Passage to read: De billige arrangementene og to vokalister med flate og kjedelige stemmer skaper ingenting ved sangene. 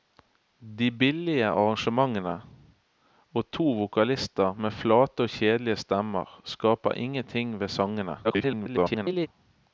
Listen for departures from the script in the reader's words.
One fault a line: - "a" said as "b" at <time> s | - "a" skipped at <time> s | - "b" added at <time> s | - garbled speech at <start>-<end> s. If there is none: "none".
- garbled speech at 8.2-9.3 s